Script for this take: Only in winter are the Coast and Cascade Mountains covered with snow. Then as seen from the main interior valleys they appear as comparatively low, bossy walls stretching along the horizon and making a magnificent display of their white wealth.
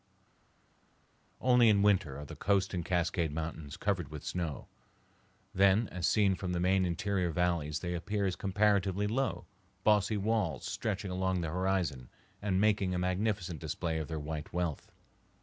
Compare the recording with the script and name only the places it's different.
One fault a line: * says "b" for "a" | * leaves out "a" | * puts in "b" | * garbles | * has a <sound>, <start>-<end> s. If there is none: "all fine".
all fine